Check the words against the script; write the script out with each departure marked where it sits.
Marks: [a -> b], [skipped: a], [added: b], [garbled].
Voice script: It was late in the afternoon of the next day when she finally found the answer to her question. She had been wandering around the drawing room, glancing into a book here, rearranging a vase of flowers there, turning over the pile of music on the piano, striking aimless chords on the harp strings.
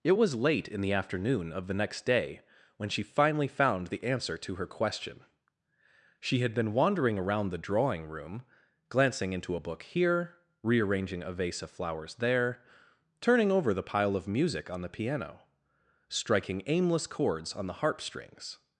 It was late in the afternoon of the next day when she finally found the answer to her question. She had been wandering around the drawing room, glancing into a book here, rearranging a vase of flowers there, turning over the pile of music on the piano, striking aimless chords on the harp strings.